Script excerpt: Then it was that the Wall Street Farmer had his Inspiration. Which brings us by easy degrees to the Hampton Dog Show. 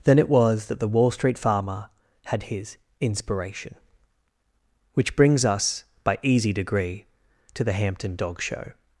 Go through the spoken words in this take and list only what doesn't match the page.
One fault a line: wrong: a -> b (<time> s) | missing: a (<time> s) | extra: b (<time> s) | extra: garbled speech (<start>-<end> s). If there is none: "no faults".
wrong: degrees -> degree (6.5 s)